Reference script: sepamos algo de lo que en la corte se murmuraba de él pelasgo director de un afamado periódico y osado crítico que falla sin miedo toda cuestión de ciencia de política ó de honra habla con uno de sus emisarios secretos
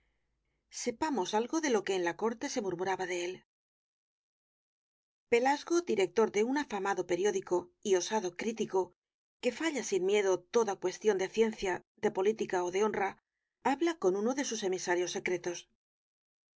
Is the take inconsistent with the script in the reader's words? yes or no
no